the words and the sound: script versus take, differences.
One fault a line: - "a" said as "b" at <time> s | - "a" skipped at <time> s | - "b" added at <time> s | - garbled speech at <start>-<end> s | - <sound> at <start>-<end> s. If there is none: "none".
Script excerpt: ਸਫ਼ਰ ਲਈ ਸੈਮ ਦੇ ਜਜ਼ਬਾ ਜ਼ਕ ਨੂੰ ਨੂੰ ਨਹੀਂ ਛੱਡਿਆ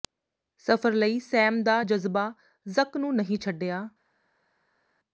- "ਦੇ" said as "ਦਾ" at 1.6 s
- "ਨੂੰ" skipped at 3.1 s